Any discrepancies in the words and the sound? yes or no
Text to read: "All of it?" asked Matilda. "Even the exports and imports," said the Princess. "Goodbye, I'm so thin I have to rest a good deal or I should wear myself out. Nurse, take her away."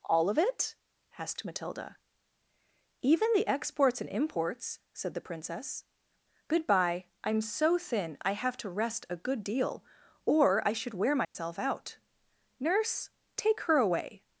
yes